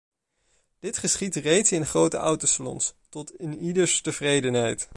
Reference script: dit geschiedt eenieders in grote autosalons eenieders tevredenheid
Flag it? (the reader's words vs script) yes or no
yes